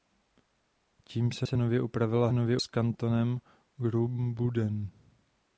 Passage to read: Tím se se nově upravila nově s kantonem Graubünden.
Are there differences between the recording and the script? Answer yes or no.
no